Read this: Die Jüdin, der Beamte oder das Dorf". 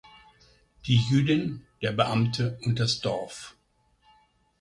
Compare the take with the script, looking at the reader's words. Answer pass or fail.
fail